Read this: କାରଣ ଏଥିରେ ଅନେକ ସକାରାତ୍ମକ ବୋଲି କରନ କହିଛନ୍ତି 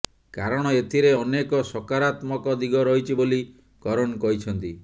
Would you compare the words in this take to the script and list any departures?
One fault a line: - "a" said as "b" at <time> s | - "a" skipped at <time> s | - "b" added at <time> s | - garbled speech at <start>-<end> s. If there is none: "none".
- "ଦିଗ ରହିଛି" added at 2.6 s